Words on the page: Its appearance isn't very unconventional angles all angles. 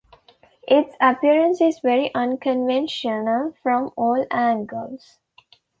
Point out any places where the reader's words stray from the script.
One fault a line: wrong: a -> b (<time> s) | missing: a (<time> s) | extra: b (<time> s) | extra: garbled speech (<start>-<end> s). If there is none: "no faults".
wrong: isn't -> is (1.6 s)
wrong: angles -> from (3.6 s)